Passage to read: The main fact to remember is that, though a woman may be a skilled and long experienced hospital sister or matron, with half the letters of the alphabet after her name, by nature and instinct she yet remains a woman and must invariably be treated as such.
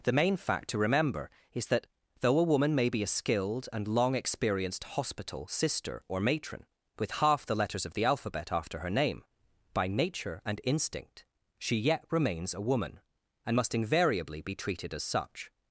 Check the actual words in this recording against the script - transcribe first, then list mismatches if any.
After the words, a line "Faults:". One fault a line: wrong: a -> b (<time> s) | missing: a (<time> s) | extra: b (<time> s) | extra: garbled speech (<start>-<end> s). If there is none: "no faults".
The main fact to remember is that, though a woman may be a skilled and long experienced hospital sister or matron, with half the letters of the alphabet after her name, by nature and instinct she yet remains a woman and must invariably be treated as such.
Faults:
no faults